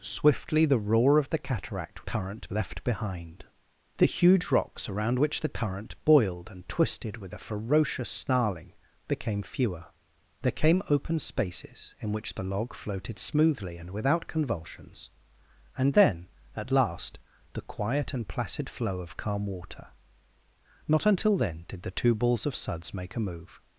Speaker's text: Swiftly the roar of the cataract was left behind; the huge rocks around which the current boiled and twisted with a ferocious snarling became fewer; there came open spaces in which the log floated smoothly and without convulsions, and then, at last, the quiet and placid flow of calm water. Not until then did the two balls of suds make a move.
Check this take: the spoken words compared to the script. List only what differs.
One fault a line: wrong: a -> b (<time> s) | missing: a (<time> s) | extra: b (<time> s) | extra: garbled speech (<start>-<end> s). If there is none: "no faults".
wrong: was -> current (2.0 s)